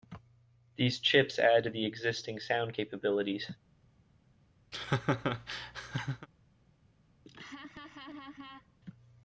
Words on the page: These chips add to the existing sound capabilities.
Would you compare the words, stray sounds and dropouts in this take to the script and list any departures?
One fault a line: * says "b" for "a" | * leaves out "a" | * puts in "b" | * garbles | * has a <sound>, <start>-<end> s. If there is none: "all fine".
* has a laugh, 4.7-6.3 s
* has a laugh, 7.3-8.8 s